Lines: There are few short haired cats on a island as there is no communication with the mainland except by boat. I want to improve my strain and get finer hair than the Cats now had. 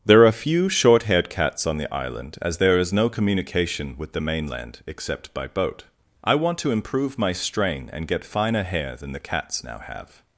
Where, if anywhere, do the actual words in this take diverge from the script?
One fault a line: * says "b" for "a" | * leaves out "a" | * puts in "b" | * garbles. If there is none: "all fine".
* says "the" for "a"
* says "have" for "had"